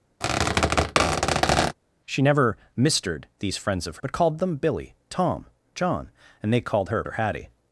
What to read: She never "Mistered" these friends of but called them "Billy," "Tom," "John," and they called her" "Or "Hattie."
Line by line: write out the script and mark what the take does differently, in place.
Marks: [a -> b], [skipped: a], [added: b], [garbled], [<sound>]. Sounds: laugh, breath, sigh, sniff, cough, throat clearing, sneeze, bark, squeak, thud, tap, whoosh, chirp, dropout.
[squeak] She never "Mistered" these friends of but called them "Billy," "Tom," "John," and they called her" "Or "Hattie."